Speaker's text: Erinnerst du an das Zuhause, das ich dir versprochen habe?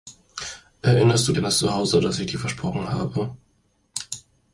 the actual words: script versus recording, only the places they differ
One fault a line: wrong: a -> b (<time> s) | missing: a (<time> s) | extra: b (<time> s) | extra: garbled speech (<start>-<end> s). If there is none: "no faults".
no faults